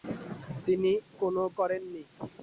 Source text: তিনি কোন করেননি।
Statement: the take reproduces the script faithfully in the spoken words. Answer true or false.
true